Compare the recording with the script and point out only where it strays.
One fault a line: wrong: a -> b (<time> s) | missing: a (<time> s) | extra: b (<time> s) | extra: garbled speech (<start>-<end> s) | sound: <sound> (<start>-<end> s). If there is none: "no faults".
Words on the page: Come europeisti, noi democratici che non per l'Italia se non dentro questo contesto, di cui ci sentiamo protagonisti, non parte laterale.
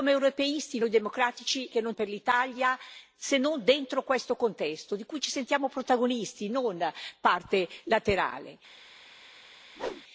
sound: whoosh (9.8-10.0 s)